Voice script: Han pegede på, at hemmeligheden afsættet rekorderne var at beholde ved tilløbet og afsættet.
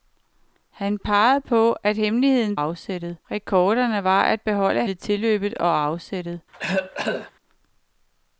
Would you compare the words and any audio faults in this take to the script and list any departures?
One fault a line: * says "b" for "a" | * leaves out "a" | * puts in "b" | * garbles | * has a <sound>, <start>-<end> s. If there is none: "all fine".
* has a cough, 6.5-7.3 s